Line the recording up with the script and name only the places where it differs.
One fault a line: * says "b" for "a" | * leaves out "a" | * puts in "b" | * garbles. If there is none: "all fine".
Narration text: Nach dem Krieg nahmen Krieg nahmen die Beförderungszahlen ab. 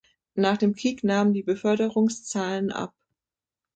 * leaves out "Krieg nahmen"